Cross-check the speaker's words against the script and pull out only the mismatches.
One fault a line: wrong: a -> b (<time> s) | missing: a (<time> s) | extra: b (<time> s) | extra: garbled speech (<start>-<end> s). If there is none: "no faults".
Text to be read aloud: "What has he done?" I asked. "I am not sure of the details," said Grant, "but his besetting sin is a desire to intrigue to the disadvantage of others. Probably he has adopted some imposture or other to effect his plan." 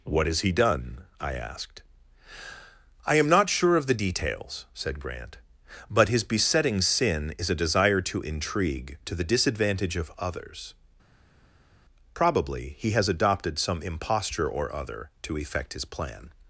no faults